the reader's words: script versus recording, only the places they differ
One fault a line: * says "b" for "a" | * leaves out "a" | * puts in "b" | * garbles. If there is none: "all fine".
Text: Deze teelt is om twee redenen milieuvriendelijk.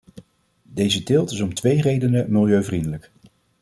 all fine